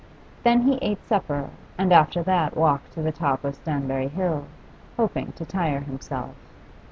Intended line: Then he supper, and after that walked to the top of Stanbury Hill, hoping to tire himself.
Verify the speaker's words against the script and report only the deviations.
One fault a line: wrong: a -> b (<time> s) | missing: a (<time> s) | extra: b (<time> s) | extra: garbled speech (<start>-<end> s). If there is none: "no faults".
extra: ate (0.8 s)